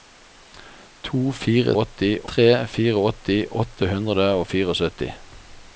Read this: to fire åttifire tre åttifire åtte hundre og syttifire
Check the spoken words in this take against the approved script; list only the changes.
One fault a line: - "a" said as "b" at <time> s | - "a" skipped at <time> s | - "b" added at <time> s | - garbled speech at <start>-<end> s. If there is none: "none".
none